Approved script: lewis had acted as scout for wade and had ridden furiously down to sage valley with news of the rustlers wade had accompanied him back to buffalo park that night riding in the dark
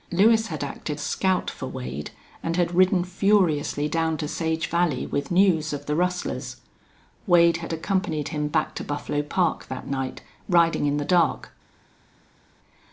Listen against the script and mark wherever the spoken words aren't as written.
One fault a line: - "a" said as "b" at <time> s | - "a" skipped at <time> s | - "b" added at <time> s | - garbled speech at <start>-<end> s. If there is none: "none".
- "as" skipped at 1.0 s